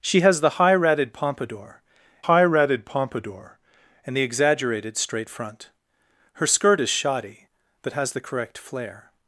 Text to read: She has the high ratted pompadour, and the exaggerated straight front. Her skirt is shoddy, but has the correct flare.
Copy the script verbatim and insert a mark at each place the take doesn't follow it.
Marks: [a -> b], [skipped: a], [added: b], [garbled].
She has the high ratted pompadour, [added: high ratted pompadour] and the exaggerated straight front. Her skirt is shoddy, but has the correct flare.